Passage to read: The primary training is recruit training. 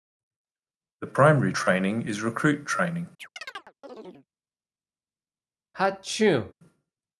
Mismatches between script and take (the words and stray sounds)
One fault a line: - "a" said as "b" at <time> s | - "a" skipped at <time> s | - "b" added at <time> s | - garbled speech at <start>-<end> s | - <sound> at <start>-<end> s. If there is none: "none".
- chirp at 3.2-4.3 s
- sneeze at 5.7-6.5 s